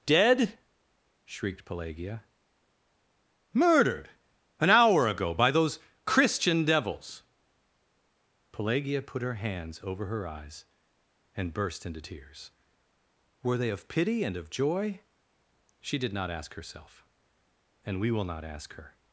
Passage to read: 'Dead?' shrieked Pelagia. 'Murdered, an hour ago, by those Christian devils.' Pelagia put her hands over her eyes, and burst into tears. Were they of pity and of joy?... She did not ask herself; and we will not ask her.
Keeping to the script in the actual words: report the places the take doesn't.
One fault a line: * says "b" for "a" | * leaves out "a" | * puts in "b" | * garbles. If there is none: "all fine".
all fine